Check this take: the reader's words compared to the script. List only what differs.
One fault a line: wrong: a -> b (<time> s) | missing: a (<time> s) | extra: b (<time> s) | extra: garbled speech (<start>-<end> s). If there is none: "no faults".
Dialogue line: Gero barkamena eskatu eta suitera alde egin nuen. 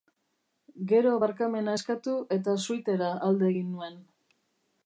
no faults